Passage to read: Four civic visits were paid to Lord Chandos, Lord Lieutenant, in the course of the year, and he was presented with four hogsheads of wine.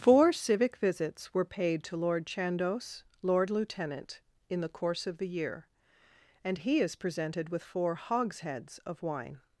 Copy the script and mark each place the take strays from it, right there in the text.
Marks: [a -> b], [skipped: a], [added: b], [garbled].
Four civic visits were paid to Lord Chandos, Lord Lieutenant, in the course of the year, and he [was -> is] presented with four hogsheads of wine.